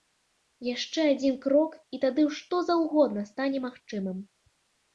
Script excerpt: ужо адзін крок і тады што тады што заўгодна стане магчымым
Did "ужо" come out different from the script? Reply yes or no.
yes